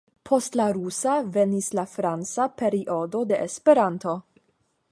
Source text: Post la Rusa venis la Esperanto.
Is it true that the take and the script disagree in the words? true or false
true